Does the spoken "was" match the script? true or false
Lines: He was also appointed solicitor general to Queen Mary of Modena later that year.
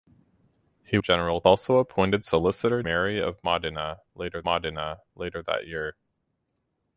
false